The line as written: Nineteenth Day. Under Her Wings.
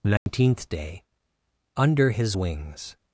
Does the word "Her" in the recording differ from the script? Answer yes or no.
yes